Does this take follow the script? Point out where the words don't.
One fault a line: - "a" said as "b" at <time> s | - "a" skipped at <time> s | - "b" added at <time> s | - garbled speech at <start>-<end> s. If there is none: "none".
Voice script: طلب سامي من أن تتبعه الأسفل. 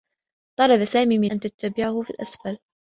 none